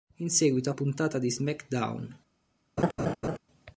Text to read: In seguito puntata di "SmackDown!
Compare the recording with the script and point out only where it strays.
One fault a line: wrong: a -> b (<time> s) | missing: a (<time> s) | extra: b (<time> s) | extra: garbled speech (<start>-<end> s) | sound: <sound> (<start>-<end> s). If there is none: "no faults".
sound: laugh (2.8-3.4 s)